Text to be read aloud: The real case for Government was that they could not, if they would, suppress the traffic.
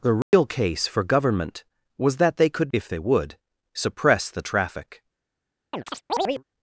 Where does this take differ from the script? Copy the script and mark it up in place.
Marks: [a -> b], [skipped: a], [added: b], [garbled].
The real case for Government was that they could [skipped: not,] if they would, suppress the traffic.